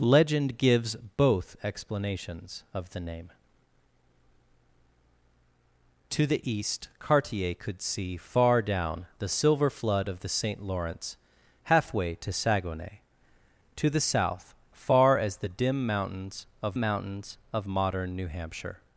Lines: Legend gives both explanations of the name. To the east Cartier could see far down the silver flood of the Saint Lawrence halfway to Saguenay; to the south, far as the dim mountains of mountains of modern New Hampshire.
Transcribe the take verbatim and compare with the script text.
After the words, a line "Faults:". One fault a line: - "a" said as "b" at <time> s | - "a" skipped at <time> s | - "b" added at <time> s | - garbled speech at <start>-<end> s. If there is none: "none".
Legend gives both explanations of the name. To the east Cartier could see far down the silver flood of the Saint Lawrence halfway to Saguenay; to the south, far as the dim mountains of mountains of modern New Hampshire.
Faults:
none